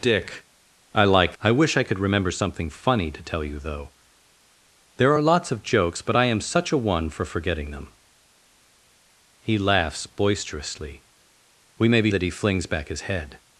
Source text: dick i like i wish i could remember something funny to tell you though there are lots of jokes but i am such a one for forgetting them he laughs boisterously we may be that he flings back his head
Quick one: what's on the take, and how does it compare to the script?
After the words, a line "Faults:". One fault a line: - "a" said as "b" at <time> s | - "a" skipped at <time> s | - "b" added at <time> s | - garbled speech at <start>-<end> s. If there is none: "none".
dick i like i wish i could remember something funny to tell you though there are lots of jokes but i am such a one for forgetting them he laughs boisterously we may be that he flings back his head
Faults:
none